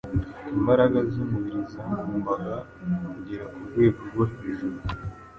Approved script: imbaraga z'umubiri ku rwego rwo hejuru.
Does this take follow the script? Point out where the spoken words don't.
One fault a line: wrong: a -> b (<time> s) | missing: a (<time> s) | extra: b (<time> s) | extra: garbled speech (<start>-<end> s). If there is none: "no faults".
extra: zagombaga kugera (1.7 s)